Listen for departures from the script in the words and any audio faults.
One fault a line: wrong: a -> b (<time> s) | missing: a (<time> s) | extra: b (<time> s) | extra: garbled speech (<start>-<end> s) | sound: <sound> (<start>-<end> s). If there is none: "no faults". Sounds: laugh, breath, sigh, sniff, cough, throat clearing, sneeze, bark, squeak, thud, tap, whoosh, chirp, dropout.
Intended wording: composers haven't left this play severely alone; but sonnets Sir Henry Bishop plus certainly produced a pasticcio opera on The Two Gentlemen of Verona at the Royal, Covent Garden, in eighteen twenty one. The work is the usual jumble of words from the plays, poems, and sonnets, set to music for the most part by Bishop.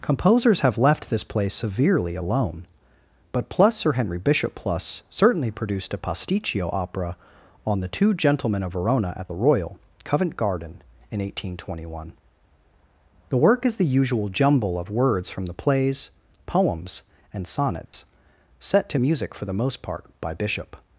wrong: haven't -> have (0.6 s)
wrong: sonnets -> plus (3.5 s)
sound: dropout (17.9-17.9 s)